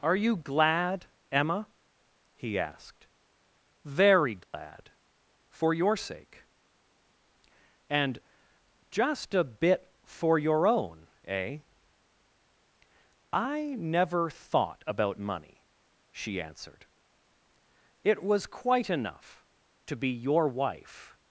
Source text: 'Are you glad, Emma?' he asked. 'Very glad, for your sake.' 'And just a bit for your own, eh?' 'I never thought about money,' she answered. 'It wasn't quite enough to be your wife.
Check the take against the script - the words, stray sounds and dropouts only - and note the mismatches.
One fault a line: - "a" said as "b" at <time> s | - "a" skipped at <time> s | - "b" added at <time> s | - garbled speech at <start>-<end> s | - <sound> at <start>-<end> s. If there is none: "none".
- dropout at 4.4-4.5 s
- "wasn't" said as "was" at 18.2 s